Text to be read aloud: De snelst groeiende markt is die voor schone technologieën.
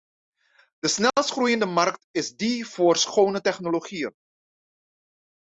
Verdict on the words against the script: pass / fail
pass